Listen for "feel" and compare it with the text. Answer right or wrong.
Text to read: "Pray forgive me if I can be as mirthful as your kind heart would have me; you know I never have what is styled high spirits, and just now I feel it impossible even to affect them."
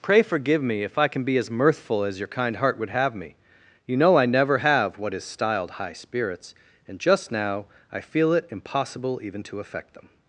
right